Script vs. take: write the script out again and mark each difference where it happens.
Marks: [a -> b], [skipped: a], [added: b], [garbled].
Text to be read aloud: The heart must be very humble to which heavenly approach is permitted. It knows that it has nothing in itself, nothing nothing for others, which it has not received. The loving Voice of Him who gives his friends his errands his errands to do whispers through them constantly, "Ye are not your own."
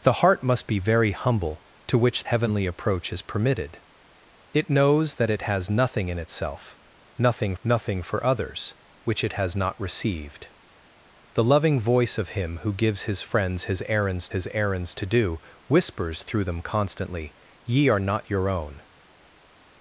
The heart must be very humble to which heavenly approach is permitted. It knows that it has nothing in itself, nothing nothing for others, which it has not received. The loving Voice of Him who gives his friends his errands his errands to do whispers through them constantly, "Ye are not your own."